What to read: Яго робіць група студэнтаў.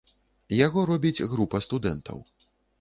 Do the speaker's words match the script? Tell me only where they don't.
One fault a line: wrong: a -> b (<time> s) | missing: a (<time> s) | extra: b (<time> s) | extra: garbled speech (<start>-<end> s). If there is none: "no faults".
no faults